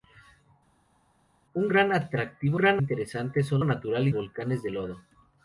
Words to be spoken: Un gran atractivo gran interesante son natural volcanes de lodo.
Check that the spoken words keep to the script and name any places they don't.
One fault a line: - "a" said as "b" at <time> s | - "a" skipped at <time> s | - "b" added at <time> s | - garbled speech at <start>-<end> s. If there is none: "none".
none